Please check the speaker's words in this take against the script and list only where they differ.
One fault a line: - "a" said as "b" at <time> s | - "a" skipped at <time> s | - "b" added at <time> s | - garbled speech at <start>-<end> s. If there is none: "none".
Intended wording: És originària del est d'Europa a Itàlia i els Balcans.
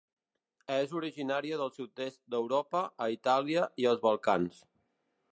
- "sud" added at 1.7 s